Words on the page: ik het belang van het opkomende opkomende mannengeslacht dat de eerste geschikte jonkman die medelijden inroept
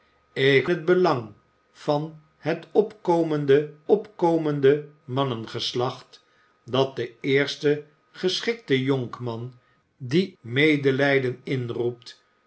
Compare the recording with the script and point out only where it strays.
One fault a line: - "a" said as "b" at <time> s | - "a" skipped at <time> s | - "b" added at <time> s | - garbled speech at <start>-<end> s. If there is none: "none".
none